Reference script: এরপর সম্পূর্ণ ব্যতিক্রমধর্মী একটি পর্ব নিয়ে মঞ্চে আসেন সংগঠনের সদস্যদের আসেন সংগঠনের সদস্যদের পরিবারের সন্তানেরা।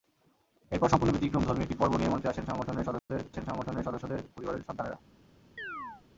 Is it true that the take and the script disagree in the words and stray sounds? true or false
true